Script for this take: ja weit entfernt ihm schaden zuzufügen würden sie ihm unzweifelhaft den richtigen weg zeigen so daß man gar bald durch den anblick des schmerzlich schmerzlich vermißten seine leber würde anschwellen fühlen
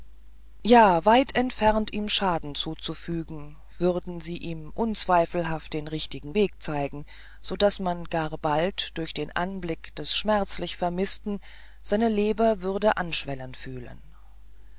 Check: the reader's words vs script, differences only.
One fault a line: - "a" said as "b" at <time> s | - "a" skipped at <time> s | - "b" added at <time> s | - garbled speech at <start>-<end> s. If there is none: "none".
- "schmerzlich" skipped at 10.8 s